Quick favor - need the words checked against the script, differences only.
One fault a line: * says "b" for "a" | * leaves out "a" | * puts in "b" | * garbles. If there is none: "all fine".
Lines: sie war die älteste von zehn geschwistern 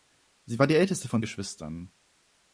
* leaves out "zehn"